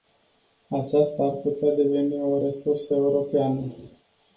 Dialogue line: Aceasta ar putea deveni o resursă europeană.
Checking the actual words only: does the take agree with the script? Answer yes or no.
yes